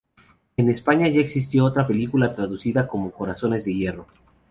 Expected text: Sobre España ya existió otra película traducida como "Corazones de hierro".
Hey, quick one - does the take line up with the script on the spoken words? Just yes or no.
no